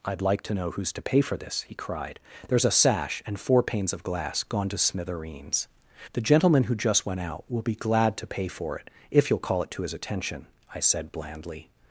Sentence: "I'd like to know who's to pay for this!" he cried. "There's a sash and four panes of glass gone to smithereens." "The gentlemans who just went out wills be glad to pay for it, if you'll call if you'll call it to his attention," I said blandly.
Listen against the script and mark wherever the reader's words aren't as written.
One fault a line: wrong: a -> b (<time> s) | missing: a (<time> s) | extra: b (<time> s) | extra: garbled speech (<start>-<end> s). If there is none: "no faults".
wrong: gentlemans -> gentleman (6.2 s)
wrong: wills -> will (7.5 s)
missing: if you'll call (9.6 s)